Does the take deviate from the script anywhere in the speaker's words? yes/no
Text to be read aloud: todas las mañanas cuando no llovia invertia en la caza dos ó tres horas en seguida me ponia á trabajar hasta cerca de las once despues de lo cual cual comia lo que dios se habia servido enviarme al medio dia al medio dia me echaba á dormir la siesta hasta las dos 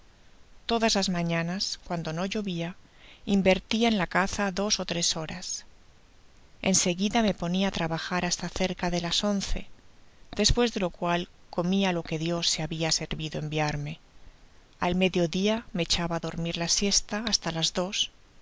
yes